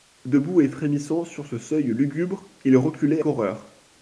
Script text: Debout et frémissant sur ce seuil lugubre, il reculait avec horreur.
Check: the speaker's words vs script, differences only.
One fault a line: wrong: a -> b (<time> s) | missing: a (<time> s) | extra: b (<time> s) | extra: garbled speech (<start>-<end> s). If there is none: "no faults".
missing: avec (3.2 s)